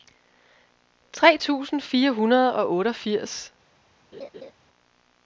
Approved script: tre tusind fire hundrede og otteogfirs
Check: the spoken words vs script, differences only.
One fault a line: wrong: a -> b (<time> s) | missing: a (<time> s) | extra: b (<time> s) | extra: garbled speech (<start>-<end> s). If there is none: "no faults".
no faults